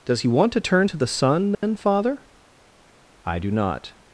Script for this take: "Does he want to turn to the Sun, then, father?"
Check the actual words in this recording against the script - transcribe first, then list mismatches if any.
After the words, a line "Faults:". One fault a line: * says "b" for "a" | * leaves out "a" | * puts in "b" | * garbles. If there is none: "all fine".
"Does he want to turn to the Sun, then, father?" "I do not
Faults:
* puts in "I do not"